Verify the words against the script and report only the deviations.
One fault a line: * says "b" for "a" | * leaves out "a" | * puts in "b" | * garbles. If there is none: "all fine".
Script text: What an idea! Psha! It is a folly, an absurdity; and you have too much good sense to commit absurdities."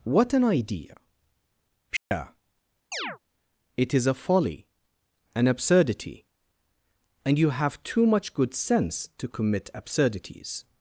all fine